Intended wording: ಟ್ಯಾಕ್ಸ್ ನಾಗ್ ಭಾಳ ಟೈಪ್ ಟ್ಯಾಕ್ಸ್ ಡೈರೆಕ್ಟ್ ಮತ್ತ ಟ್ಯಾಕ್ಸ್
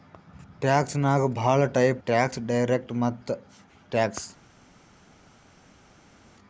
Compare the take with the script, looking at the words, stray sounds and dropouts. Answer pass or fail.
pass